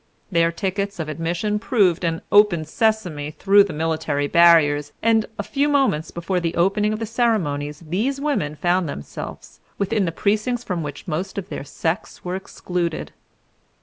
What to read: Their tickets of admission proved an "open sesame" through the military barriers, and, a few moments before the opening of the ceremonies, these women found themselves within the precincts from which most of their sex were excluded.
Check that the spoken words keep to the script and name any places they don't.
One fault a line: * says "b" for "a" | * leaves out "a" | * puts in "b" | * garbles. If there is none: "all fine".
all fine